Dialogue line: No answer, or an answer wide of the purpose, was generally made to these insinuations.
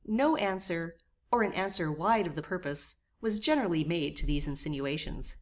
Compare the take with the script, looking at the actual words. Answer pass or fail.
pass